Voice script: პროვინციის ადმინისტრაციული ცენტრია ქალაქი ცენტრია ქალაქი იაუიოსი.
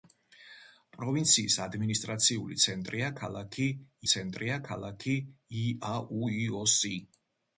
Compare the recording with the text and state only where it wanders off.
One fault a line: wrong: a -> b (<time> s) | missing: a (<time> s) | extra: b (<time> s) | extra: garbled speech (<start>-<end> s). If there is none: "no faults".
no faults